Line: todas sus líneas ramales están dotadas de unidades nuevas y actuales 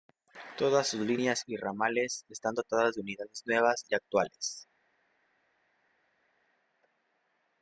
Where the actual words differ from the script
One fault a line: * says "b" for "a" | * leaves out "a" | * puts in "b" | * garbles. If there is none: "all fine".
* puts in "y"